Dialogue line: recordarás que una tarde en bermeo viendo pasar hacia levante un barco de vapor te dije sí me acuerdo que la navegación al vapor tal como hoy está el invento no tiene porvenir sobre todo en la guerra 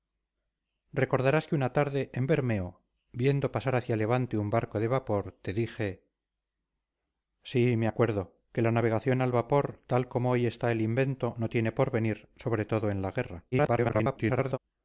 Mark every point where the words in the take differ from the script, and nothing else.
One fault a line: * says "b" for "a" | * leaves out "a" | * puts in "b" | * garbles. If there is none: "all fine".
* garbles